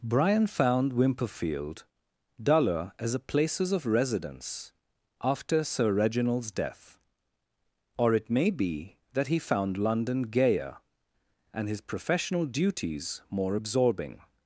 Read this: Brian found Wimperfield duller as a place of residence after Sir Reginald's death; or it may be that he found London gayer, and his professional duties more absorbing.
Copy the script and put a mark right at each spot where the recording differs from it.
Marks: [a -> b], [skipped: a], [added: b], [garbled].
Brian found Wimperfield duller as a [place -> places] of residence after Sir Reginald's death; or it may be that he found London gayer, and his professional duties more absorbing.